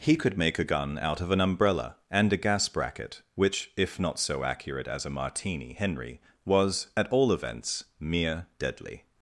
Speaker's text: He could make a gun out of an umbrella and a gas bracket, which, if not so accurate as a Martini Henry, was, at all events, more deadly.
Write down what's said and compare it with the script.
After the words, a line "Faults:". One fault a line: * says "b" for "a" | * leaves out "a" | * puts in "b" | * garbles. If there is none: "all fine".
He could make a gun out of an umbrella and a gas bracket, which, if not so accurate as a Martini Henry, was, at all events, mere deadly.
Faults:
* says "mere" for "more"